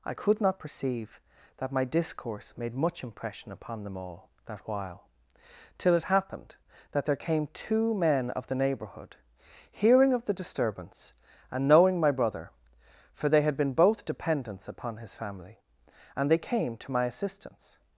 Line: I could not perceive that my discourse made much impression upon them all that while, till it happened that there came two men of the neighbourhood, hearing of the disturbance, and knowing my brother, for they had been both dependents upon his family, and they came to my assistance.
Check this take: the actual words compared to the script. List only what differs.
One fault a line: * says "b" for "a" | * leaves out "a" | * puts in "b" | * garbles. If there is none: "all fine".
all fine